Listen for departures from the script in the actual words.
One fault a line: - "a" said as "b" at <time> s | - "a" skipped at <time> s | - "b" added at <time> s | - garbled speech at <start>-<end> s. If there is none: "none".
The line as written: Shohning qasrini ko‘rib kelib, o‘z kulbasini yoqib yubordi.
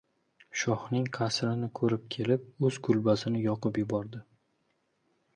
none